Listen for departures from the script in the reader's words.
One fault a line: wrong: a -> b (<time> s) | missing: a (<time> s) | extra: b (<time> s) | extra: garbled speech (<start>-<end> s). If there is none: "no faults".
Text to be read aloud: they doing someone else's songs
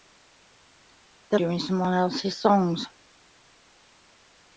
no faults